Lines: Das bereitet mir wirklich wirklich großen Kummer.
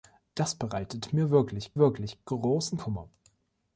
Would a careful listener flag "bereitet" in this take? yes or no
no